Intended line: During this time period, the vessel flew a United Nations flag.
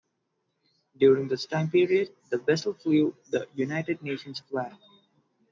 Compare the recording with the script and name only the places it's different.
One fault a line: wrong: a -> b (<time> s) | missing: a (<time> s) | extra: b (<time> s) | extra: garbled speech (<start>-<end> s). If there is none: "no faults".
wrong: a -> the (3.3 s)